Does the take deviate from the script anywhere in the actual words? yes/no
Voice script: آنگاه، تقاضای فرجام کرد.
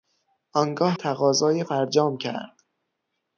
no